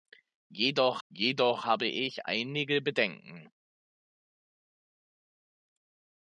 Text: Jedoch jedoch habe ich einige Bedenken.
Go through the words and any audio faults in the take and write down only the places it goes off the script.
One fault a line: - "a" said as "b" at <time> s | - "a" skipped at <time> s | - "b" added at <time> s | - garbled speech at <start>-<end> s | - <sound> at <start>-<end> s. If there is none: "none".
none